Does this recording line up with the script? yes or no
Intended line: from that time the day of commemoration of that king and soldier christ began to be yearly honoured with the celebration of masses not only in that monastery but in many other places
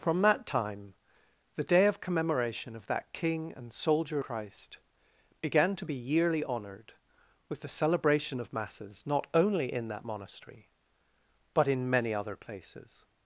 yes